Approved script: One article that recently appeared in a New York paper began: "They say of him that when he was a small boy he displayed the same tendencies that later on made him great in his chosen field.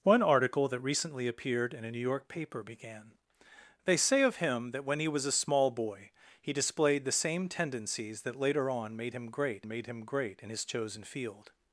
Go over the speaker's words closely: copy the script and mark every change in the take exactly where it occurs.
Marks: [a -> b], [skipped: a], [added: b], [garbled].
One article that recently appeared in a New York paper began: "They say of him that when he was a small boy he displayed the same tendencies that later on made him great [added: made him great] in his chosen field.